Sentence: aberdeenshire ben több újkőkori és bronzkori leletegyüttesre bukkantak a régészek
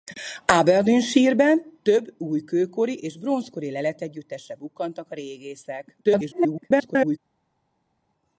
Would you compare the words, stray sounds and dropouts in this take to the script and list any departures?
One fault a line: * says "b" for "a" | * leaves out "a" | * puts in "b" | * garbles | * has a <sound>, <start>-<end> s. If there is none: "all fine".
* garbles